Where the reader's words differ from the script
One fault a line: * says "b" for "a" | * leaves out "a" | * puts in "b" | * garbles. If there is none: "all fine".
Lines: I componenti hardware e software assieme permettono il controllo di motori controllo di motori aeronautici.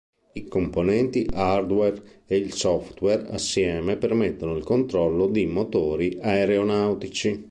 * puts in "il"
* leaves out "controllo di motori"